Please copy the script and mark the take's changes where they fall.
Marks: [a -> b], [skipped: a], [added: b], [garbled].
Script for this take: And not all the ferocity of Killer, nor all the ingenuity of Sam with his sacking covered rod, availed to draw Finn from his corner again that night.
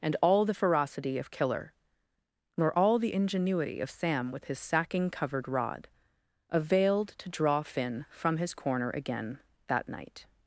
And [skipped: not] all the ferocity of Killer, nor all the ingenuity of Sam with his sacking covered rod, availed to draw Finn from his corner again that night.